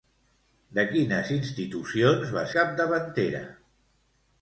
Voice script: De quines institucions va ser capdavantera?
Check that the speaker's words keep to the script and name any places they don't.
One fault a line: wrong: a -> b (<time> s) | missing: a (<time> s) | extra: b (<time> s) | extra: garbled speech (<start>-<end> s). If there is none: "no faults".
missing: ser (2.5 s)